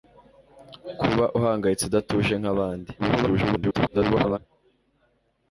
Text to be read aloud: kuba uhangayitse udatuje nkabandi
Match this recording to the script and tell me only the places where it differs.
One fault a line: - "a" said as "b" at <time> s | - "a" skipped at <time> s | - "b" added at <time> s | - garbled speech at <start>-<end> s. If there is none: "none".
- garbled speech at 3.0-4.4 s